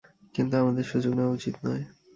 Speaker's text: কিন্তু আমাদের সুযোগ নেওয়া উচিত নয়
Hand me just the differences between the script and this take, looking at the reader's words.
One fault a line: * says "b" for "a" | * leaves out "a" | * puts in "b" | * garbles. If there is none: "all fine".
all fine